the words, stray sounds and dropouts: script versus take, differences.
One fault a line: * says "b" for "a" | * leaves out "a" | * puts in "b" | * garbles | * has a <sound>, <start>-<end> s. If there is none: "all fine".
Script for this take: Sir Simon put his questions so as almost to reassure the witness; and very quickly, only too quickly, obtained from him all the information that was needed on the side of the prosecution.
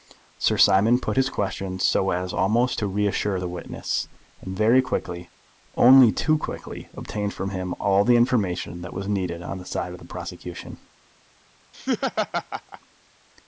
* has a laugh, 11.7-12.8 s